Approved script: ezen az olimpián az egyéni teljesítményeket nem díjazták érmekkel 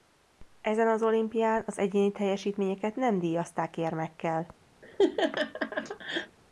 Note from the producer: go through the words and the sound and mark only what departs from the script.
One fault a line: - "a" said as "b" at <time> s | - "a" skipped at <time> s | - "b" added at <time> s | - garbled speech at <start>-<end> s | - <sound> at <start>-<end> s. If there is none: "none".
- laugh at 4.8-6.4 s